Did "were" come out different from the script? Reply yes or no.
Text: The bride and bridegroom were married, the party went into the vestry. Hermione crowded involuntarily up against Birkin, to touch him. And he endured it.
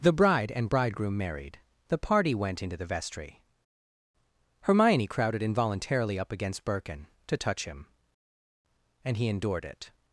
yes